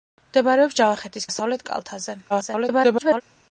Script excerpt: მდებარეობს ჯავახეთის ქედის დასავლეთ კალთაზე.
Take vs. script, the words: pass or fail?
fail